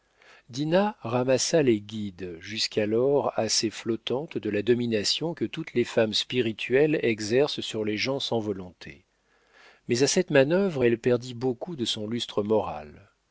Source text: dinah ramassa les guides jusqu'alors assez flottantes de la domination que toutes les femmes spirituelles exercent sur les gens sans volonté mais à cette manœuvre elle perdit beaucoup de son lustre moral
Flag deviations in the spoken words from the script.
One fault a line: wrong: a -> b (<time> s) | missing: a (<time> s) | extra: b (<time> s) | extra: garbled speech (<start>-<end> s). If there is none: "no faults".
no faults